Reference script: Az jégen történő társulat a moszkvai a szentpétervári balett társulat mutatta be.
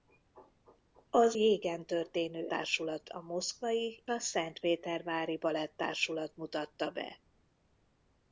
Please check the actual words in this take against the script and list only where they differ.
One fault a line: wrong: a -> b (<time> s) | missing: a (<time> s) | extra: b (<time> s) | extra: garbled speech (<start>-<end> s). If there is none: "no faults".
no faults